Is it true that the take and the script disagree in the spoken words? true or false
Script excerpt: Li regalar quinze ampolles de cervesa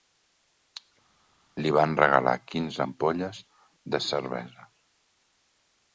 true